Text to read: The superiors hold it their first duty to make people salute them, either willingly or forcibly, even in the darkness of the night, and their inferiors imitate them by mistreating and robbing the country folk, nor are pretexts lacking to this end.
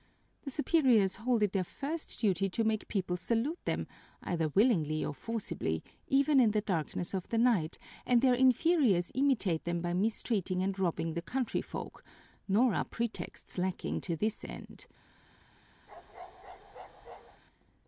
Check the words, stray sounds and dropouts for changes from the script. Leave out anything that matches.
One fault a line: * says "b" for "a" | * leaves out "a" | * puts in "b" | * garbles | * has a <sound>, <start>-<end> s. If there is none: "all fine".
* has a bark, 15.9-17.4 s